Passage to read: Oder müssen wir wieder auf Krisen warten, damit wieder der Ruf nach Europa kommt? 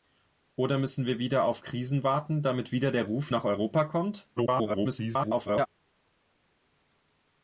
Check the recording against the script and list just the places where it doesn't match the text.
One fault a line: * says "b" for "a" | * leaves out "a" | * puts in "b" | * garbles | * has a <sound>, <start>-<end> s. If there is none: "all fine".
* garbles